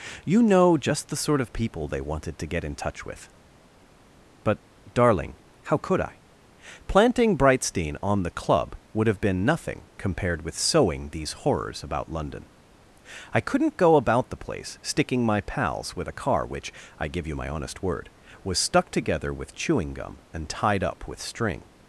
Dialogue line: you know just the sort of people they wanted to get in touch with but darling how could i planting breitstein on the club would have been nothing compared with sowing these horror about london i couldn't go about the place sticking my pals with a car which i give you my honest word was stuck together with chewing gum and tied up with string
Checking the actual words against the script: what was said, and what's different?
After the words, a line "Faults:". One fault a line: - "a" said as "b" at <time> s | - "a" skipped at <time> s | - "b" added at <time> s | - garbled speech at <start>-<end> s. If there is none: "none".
you know just the sort of people they wanted to get in touch with but darling how could i planting breitstein on the club would have been nothing compared with sowing these horrors about london i couldn't go about the place sticking my pals with a car which i give you my honest word was stuck together with chewing gum and tied up with string
Faults:
- "horror" said as "horrors" at 11.3 s